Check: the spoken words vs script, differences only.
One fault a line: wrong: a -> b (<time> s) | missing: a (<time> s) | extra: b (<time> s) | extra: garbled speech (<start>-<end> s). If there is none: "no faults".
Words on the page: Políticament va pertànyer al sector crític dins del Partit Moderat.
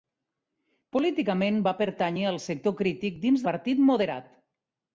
missing: del (3.5 s)